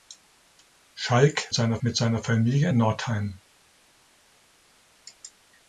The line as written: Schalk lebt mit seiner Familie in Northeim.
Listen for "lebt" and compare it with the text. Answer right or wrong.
wrong